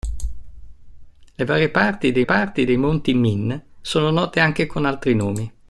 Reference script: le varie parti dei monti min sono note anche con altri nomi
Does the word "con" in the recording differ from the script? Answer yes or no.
no